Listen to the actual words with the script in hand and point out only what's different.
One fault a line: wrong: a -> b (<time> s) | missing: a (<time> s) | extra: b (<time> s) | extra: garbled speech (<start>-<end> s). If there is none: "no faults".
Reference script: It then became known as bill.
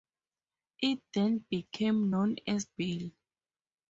no faults